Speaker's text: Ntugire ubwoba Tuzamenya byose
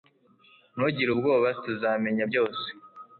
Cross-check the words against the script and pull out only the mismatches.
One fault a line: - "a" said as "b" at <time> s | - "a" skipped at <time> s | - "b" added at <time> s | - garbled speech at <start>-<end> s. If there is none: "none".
none